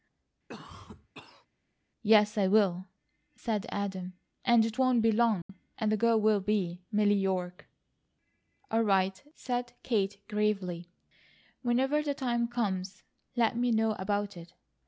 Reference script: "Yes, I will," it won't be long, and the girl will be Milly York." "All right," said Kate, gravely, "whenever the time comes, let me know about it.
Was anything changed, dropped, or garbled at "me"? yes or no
no